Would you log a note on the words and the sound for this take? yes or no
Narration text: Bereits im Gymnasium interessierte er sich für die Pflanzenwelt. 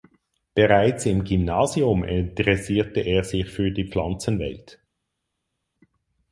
no